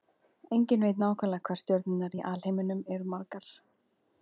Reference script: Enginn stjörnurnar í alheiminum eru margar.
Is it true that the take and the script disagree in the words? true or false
true